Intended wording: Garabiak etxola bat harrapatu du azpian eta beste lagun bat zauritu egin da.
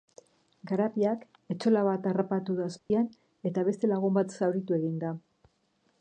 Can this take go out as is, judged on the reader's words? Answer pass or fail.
pass